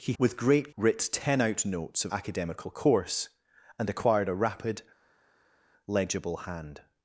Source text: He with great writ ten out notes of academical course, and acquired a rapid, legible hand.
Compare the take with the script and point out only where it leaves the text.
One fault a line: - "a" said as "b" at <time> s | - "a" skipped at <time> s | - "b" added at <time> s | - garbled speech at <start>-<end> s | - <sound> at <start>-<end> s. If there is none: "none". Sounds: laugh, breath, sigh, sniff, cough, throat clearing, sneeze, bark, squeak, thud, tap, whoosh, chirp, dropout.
none